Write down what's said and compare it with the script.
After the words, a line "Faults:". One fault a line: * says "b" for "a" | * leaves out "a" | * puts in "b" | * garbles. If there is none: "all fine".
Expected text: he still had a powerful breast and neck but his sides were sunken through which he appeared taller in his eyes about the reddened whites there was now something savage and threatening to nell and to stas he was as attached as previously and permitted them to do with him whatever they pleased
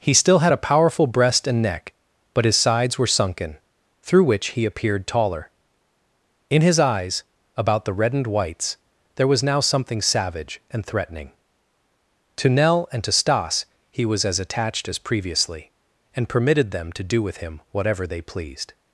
he still had a powerful breast and neck but his sides were sunken through which he appeared taller in his eyes about the reddened whites there was now something savage and threatening to nell and to stas he was as attached as previously and permitted them to do with him whatever they pleased
Faults:
all fine